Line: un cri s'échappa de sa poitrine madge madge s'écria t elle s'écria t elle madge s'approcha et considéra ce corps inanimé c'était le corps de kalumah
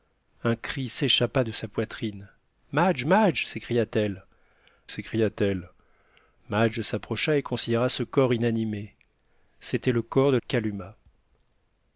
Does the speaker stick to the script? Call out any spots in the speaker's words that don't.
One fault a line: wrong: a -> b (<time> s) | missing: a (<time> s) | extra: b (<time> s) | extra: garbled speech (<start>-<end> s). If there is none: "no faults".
no faults